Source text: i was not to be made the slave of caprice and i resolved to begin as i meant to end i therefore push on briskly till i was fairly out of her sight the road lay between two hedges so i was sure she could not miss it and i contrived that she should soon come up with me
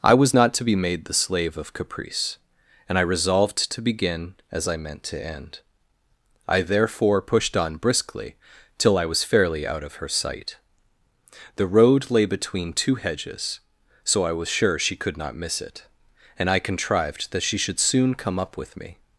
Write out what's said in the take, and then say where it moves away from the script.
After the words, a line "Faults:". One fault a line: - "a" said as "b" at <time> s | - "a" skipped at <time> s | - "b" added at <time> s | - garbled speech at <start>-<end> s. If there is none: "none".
i was not to be made the slave of caprice and i resolved to begin as i meant to end i therefore pushed on briskly till i was fairly out of her sight the road lay between two hedges so i was sure she could not miss it and i contrived that she should soon come up with me
Faults:
- "push" said as "pushed" at 7.2 s